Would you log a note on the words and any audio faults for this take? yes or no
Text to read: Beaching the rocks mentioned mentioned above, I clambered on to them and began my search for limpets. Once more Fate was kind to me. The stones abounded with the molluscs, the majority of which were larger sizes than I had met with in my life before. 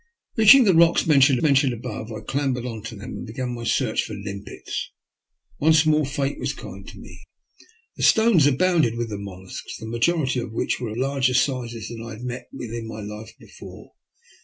no